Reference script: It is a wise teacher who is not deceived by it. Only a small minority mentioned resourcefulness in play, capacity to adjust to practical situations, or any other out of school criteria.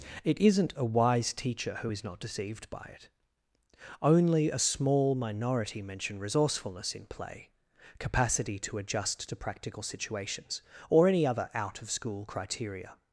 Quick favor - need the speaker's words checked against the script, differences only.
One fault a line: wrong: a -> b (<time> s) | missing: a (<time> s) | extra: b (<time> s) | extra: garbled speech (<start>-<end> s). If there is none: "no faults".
wrong: is -> isn't (0.4 s)
wrong: mentioned -> mention (5.8 s)